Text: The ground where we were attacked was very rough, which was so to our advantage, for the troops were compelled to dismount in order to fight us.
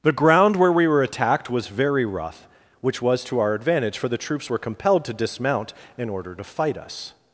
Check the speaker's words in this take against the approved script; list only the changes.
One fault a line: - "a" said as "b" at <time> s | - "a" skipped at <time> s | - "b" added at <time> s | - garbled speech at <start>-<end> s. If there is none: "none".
- "so" skipped at 3.2 s